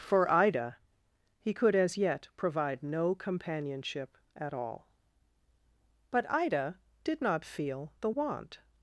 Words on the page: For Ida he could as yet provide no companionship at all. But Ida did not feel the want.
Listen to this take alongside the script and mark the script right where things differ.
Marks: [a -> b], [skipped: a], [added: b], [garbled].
For Ida he could as yet provide no companionship at all. But Ida did not feel the want.